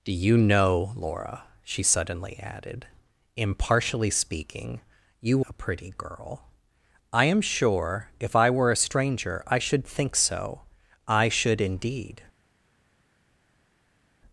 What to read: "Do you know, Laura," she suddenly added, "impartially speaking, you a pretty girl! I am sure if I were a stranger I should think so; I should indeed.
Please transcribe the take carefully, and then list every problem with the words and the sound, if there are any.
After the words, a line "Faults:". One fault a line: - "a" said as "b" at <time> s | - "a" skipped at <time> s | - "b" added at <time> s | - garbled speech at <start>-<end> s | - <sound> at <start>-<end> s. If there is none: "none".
"Do you know, Laura," she suddenly added, "impartially speaking, you a pretty girl! I am sure if I were a stranger I should think so; I should indeed.
Faults:
none